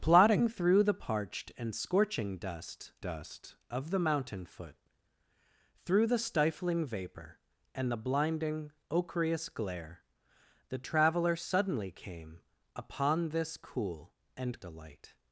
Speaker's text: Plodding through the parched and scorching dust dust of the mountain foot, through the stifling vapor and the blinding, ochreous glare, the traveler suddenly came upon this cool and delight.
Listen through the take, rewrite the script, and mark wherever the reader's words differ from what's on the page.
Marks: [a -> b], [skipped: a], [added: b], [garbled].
Plodding through the parched and scorching dust dust of the mountain foot, through the stifling vapor and the blinding, ochreous glare, the traveler suddenly came upon this cool and delight.